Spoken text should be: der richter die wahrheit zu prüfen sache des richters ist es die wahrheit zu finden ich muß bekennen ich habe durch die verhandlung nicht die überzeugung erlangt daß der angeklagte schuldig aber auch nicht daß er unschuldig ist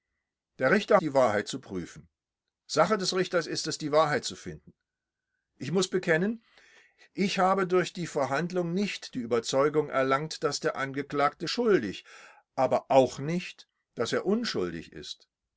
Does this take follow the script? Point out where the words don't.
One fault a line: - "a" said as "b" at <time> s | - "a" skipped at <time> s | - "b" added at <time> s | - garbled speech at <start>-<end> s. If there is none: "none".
none